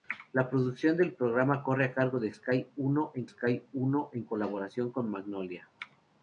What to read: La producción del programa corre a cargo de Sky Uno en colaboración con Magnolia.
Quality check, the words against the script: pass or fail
fail